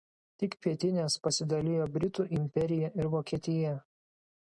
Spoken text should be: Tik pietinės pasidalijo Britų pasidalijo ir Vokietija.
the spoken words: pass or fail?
fail